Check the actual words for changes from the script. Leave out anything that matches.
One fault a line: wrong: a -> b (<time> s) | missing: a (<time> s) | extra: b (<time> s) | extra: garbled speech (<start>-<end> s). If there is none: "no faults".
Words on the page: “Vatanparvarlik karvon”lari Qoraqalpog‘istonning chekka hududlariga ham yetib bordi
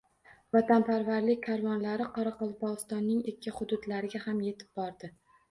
no faults